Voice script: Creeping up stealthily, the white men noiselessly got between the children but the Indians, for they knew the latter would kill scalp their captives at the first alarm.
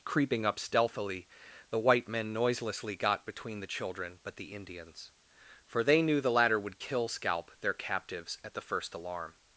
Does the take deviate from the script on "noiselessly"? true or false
false